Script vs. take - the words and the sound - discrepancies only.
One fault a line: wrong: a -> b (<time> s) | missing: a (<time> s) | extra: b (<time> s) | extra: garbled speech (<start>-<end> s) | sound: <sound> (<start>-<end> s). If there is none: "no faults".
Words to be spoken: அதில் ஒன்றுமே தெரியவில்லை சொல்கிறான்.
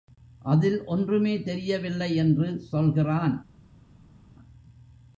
extra: என்று (2.1 s)